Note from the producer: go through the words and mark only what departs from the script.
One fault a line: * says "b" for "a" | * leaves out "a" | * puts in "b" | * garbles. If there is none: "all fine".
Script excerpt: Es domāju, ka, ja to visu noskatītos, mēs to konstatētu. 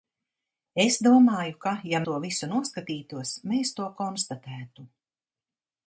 all fine